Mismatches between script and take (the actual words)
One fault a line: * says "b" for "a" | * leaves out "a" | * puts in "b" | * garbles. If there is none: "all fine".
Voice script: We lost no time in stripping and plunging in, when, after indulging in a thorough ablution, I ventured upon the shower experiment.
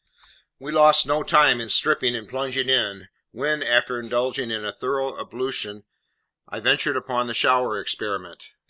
all fine